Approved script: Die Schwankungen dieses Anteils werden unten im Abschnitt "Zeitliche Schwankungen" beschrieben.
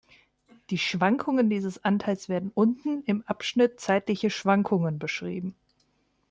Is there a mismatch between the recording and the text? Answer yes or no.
no